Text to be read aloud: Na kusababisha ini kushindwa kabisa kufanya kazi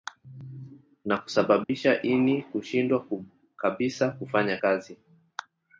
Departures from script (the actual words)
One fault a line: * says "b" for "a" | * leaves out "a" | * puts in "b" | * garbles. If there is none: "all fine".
all fine